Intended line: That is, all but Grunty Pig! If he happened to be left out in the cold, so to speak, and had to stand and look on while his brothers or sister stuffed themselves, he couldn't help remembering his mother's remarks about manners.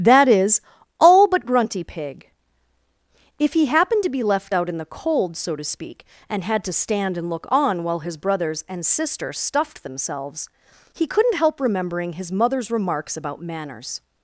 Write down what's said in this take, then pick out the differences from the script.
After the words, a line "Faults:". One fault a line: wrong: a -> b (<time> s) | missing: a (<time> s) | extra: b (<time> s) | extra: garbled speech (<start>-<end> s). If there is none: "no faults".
That is, all but Grunty Pig! If he happened to be left out in the cold, so to speak, and had to stand and look on while his brothers and sister stuffed themselves, he couldn't help remembering his mother's remarks about manners.
Faults:
wrong: or -> and (8.7 s)